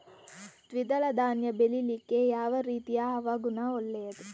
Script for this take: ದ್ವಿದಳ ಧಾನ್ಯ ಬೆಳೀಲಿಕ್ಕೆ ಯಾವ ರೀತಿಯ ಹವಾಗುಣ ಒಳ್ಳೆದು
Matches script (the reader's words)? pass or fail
pass